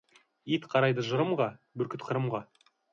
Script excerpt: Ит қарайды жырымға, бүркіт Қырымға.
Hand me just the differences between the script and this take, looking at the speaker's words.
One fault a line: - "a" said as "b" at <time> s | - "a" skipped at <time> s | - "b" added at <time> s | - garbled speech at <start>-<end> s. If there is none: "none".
none